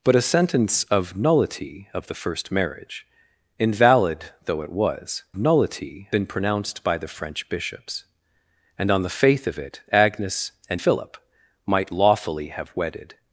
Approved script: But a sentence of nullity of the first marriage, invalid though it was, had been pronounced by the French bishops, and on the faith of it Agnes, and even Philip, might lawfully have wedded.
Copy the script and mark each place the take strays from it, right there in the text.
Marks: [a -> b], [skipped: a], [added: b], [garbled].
But a sentence of nullity of the first marriage, invalid though it was, [had -> nullity] been pronounced by the French bishops, and on the faith of it Agnes, and [skipped: even] Philip, might lawfully have wedded.